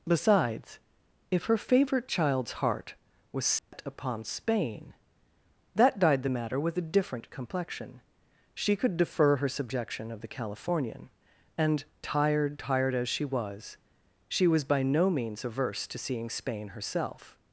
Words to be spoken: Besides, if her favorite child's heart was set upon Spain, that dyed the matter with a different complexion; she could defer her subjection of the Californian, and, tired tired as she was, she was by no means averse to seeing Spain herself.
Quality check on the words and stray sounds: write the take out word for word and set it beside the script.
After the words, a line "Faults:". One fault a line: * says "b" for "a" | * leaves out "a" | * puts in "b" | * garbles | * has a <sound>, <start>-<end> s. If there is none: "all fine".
Besides, if her favorite child's heart was set upon Spain, that dyed the matter with a different complexion; she could defer her subjection of the Californian, and, tired tired as she was, she was by no means averse to seeing Spain herself.
Faults:
* has a dropout, 3.6-3.7 s